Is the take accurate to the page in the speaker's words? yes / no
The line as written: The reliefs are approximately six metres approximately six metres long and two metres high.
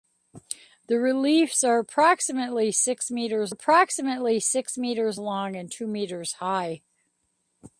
yes